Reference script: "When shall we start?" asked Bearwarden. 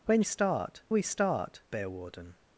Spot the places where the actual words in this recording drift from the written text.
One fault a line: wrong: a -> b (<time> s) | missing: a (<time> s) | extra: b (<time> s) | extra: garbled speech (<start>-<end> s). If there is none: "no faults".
wrong: shall -> start (0.2 s)
missing: asked (1.6 s)